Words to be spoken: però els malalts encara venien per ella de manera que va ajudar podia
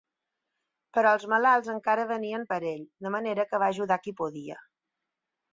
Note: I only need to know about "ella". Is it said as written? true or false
false